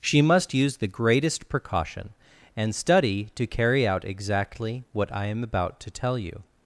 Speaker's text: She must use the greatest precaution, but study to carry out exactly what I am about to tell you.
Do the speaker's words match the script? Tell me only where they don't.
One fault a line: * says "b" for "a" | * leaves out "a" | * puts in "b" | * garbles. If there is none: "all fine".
* says "and" for "but"